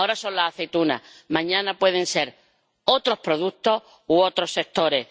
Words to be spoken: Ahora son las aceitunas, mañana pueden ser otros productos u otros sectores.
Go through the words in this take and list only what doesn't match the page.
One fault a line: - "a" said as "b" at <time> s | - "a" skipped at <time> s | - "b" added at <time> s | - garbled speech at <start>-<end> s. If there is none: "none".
none